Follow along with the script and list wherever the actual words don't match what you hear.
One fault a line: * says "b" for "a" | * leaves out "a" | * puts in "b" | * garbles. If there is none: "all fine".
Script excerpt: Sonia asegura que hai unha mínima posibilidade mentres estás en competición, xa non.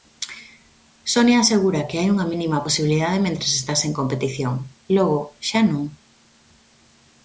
* puts in "logo"